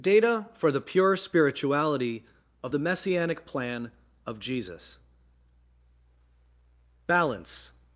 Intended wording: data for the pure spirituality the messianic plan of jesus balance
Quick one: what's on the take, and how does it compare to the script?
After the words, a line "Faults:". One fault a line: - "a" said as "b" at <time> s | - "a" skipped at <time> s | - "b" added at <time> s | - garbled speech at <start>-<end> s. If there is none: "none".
data for the pure spirituality of the messianic plan of jesus balance
Faults:
- "of" added at 2.6 s